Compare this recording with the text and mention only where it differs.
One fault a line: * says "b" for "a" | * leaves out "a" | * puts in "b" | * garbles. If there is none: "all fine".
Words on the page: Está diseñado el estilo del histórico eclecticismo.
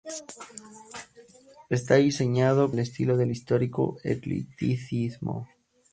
all fine